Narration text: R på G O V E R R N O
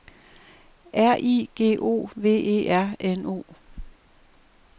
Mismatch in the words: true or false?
true